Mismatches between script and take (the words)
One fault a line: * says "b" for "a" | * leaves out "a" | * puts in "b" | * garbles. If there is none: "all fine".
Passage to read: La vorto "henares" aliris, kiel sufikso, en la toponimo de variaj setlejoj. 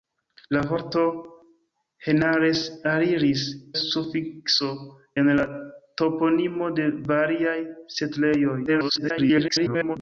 * leaves out "kiel"
* garbles